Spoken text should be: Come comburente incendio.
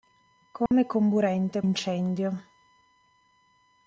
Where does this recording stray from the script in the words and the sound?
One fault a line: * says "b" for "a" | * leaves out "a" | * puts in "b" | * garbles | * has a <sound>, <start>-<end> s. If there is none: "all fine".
* has a dropout, 0.7-0.7 s